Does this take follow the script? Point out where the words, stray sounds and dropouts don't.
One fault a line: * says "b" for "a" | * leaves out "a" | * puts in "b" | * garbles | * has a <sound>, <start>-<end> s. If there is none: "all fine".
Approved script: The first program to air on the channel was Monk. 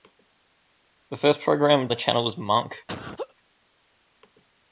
* leaves out "to air on"
* has a laugh, 2.9-3.3 s